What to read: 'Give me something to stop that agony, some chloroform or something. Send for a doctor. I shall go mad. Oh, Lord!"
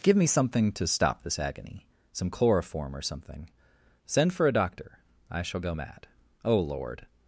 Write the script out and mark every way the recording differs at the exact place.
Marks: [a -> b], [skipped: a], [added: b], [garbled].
'Give me something to stop [that -> this] agony, some chloroform or something. Send for a doctor. I shall go mad. Oh, Lord!"